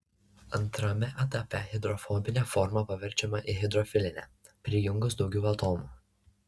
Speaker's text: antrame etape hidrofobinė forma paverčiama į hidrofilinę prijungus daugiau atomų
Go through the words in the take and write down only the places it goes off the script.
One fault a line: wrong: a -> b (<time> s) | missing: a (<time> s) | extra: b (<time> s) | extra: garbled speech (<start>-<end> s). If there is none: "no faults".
no faults